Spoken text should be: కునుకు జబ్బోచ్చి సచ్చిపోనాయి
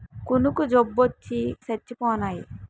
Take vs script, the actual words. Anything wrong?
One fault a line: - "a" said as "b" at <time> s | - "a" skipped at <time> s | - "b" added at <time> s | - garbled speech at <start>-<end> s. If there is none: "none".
none